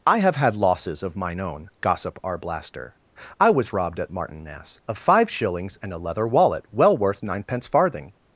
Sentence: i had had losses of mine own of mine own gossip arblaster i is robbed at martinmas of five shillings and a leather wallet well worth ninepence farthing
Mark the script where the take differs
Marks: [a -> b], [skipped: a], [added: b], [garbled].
i [had -> have] had losses of mine own [skipped: of mine own] gossip arblaster i [is -> was] robbed at martinmas of five shillings and a leather wallet well worth ninepence farthing